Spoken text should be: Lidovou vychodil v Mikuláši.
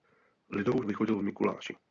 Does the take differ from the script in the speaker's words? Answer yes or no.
no